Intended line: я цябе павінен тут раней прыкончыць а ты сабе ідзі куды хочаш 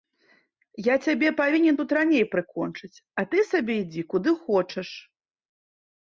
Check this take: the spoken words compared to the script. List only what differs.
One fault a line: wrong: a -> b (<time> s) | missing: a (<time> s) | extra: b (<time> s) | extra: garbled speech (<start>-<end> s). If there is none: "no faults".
no faults